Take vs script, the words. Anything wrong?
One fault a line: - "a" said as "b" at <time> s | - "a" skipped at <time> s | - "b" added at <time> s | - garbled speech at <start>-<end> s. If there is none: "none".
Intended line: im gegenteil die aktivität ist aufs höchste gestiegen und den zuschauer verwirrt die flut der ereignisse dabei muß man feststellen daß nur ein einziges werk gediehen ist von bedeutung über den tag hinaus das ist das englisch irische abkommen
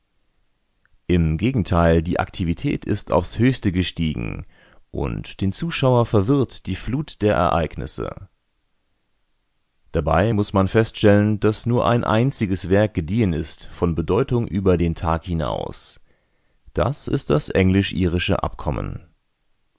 none